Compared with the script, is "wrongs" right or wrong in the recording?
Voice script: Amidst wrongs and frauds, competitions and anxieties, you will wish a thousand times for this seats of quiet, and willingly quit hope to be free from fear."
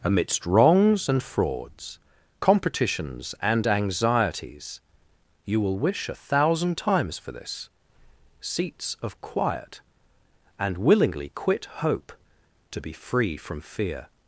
right